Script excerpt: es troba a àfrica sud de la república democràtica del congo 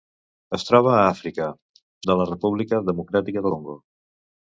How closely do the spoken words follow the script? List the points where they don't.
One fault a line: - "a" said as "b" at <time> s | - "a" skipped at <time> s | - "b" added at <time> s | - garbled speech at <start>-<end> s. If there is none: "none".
- "sud" skipped at 1.5 s
- "del" skipped at 3.5 s